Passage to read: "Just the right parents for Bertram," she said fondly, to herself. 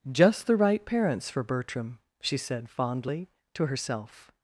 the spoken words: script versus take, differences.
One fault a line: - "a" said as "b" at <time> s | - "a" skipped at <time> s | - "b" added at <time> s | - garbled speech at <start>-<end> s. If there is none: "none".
none